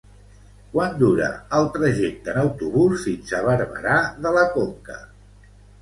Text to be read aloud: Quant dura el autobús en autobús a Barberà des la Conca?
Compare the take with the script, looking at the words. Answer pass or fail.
fail